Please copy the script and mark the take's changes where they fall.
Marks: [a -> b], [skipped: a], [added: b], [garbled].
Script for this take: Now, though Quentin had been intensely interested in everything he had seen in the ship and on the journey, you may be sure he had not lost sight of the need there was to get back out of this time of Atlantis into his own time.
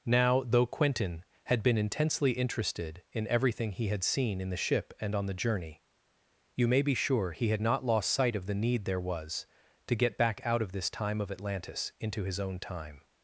Now, though Quentin had been intensely interested in everything he had seen in the ship and on the journey, you may be sure he had not lost sight of the need there was to get back out of this time of Atlantis into his own time.